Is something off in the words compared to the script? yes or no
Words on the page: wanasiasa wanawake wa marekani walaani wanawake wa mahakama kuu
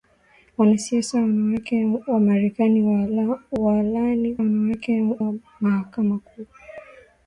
no